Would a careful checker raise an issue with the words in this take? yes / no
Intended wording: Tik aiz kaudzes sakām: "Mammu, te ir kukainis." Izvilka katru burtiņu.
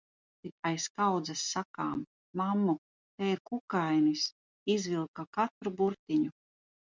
no